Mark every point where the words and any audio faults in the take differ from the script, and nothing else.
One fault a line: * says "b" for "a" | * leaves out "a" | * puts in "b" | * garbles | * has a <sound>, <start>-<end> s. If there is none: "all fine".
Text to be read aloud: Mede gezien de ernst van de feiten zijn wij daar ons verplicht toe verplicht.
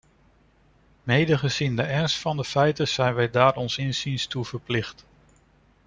* says "inziens" for "verplicht"